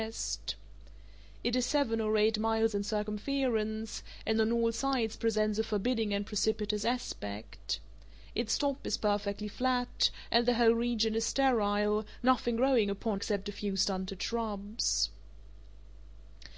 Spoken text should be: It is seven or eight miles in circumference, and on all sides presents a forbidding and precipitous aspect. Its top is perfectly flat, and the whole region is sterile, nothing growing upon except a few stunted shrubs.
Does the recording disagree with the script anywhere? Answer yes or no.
no